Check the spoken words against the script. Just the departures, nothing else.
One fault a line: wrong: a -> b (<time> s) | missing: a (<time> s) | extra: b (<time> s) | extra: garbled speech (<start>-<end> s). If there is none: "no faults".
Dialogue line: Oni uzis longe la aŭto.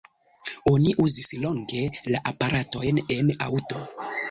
extra: aparatojn en (2.3 s)